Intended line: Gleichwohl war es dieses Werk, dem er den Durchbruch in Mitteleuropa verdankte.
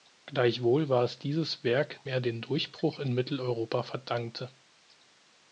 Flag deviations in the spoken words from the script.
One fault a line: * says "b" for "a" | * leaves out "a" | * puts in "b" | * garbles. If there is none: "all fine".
* leaves out "dem"